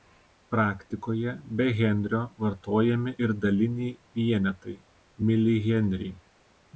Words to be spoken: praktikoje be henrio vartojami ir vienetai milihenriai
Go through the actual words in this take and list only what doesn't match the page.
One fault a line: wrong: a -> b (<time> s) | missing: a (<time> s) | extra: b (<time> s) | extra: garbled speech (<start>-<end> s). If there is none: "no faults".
extra: daliniai (3.4 s)